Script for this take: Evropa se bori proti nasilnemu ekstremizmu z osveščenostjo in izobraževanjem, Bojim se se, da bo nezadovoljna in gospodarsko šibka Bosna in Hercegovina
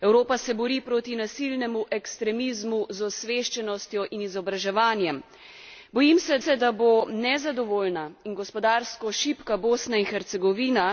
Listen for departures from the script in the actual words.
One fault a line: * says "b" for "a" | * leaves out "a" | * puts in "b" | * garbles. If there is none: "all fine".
all fine